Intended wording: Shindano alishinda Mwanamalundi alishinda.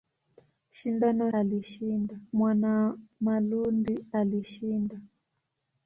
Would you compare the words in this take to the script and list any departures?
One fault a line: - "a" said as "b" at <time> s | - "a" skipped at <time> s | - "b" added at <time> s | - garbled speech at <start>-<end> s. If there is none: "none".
none